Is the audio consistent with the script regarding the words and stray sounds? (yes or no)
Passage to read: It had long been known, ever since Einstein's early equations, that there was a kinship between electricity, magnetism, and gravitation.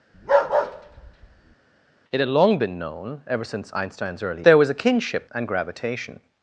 no